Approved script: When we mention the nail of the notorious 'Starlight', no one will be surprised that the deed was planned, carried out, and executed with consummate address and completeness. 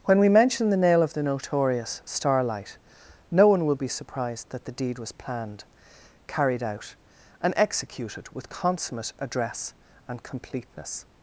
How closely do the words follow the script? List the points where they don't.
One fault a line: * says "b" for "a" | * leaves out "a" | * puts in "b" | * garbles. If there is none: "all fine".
all fine